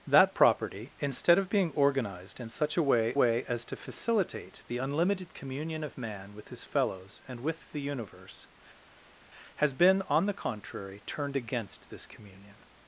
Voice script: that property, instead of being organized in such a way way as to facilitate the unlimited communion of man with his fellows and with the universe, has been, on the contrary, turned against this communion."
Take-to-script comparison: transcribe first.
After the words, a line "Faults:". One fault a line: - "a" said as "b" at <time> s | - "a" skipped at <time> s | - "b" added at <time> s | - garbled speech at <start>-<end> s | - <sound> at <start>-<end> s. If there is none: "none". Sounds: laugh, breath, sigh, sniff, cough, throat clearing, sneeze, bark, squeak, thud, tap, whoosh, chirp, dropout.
that property, instead of being organized in such a way way as to facilitate the unlimited communion of man with his fellows and with the universe, has been, on the contrary, turned against this communion."
Faults:
none